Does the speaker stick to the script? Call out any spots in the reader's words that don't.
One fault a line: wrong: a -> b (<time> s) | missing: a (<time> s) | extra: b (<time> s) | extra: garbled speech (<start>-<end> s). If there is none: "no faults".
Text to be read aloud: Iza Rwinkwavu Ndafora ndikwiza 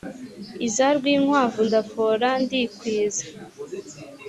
no faults